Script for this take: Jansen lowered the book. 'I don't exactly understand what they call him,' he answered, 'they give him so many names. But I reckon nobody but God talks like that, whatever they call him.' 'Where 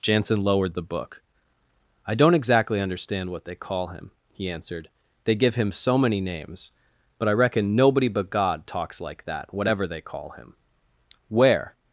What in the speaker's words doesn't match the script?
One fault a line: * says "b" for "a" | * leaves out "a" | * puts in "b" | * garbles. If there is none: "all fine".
all fine